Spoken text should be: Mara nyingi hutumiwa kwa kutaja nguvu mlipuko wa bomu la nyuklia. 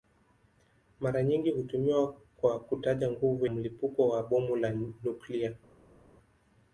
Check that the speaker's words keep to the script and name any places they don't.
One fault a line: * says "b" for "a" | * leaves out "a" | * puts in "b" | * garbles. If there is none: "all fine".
all fine